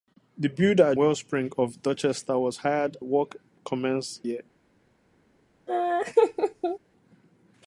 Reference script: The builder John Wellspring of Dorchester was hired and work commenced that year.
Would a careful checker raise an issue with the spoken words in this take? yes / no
yes